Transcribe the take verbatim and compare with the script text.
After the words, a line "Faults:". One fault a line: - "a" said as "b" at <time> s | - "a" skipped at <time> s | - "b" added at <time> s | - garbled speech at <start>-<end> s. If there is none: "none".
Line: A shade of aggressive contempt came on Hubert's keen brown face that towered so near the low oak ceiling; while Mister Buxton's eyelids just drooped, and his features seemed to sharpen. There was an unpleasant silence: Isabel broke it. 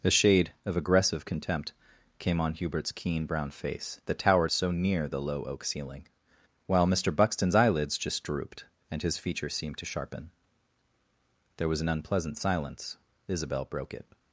A shade of aggressive contempt came on Hubert's keen brown face that towered so near the low oak ceiling; while Mister Buxton's eyelids just drooped, and his features seemed to sharpen. There was an unpleasant silence: Isabel broke it.
Faults:
none